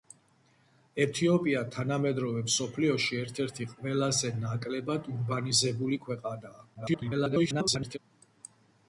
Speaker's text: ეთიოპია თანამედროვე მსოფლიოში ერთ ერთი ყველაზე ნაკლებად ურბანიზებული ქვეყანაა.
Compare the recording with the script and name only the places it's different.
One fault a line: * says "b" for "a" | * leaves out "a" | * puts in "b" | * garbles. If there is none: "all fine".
* garbles